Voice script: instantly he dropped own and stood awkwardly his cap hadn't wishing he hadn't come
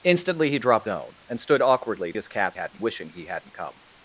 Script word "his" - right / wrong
right